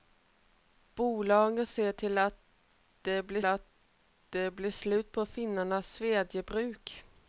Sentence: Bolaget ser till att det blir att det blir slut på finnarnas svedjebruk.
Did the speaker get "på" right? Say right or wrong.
right